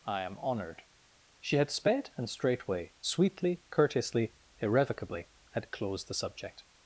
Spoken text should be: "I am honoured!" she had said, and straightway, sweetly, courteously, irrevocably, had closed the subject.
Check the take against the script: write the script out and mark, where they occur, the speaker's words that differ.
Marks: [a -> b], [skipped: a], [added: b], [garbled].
"I am honoured!" she had [said, -> sped] and straightway, sweetly, courteously, irrevocably, had closed the subject.